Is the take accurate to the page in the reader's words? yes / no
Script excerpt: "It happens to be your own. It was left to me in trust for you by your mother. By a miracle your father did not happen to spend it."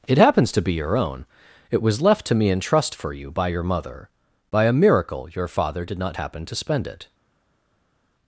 yes